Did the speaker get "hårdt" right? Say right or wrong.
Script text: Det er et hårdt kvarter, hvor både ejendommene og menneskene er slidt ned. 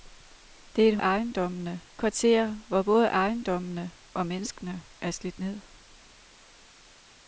wrong